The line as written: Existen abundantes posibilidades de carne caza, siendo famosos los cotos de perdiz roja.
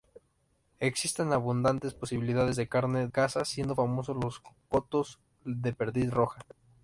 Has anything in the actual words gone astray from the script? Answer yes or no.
no